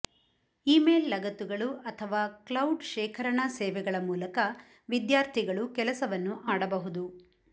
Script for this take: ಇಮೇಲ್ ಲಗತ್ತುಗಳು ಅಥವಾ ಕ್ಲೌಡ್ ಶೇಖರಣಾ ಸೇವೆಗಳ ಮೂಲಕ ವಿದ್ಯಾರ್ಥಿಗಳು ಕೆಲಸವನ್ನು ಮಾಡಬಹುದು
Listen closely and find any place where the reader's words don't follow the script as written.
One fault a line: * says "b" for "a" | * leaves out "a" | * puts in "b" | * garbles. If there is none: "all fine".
all fine